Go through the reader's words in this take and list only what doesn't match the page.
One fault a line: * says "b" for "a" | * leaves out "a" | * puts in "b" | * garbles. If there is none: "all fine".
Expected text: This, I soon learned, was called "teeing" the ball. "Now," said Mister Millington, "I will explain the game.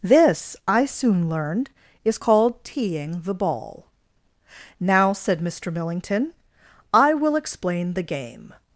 * says "is" for "was"